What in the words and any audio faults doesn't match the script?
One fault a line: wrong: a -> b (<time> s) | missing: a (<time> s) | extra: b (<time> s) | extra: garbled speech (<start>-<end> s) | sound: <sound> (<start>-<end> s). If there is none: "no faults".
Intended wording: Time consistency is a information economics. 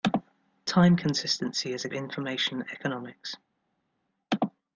no faults